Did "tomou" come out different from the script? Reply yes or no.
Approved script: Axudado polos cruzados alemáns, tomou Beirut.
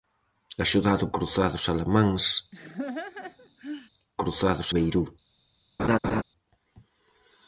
yes